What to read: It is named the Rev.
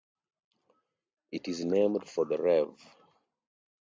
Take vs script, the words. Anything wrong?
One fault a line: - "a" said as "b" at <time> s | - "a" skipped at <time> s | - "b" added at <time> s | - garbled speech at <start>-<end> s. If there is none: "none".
- "for" added at 2.1 s